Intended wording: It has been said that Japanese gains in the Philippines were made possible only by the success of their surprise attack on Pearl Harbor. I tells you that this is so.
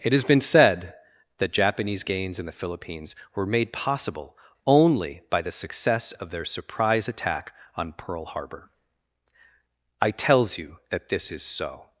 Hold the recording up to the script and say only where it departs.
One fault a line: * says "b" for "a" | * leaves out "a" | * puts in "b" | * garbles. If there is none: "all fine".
all fine